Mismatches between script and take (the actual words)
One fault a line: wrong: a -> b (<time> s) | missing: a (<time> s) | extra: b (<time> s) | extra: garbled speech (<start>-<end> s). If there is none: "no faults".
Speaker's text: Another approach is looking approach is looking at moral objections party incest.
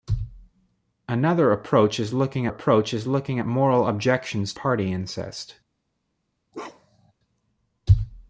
no faults